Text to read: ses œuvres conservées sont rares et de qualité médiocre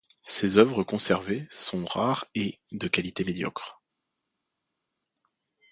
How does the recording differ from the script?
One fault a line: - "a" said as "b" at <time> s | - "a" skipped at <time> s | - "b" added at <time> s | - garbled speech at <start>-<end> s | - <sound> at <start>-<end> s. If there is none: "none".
none